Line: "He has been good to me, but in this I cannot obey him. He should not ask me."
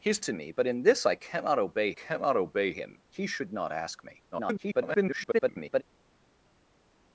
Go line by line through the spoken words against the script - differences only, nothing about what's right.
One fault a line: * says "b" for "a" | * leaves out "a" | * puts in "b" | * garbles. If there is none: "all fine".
* leaves out "been good"
* puts in "cannot obey"
* garbles